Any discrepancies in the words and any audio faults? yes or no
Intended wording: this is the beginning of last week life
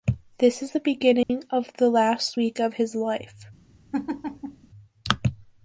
yes